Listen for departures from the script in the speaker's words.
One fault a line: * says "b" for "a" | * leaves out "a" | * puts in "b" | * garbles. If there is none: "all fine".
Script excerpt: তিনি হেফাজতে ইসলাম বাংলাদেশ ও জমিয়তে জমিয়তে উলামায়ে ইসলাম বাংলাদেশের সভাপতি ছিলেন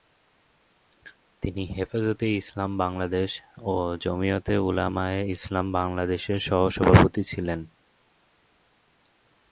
* leaves out "জমিয়তে"
* puts in "সহ"